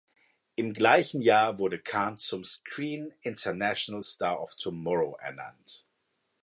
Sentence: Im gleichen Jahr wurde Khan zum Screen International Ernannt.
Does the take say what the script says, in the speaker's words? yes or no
no